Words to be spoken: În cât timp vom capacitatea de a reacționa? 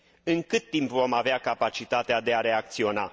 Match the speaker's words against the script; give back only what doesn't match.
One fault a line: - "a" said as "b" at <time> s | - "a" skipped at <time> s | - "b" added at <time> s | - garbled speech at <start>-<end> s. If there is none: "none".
- "avea" added at 1.1 s